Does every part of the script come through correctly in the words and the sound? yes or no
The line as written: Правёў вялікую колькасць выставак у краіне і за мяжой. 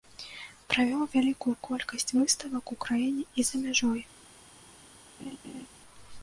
no